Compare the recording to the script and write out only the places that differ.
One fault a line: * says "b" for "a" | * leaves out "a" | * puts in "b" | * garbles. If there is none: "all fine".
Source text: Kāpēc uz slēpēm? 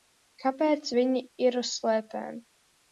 * puts in "viņi ir"